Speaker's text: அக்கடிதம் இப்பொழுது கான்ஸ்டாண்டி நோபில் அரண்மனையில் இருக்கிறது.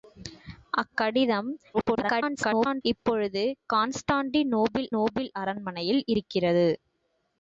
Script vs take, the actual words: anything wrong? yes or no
yes